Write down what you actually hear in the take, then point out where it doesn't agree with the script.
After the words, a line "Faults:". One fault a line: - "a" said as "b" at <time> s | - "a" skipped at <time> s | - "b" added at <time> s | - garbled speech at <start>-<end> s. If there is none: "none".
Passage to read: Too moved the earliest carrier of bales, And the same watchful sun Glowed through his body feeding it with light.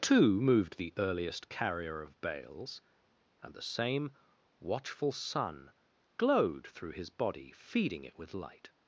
Too moved the earliest carrier of bales, And the same watchful sun Glowed through his body feeding it with light.
Faults:
none